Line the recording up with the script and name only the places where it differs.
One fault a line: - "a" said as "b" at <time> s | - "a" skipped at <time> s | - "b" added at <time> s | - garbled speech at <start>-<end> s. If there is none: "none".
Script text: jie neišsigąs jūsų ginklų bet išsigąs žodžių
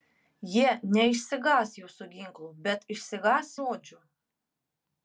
none